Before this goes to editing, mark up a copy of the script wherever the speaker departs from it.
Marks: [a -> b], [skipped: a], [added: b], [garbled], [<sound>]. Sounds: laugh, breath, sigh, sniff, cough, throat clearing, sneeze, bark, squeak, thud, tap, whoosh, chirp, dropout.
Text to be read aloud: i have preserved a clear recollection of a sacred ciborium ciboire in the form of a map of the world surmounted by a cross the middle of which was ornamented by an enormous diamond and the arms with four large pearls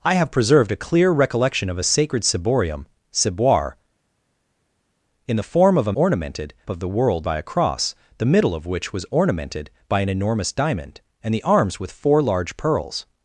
i have preserved a clear recollection of a sacred ciborium ciboire in the form of a [map -> ornamented] of the world [skipped: surmounted] by a cross the middle of which was ornamented by an enormous diamond and the arms with four large pearls